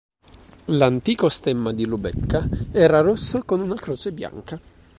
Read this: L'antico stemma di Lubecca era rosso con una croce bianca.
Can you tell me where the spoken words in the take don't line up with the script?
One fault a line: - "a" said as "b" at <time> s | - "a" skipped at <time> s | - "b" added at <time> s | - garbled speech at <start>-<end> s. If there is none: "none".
none